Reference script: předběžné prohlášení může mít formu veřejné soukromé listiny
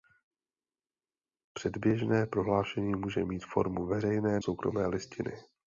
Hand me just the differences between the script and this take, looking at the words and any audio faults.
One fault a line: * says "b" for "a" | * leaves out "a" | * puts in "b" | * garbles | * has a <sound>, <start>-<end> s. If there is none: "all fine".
all fine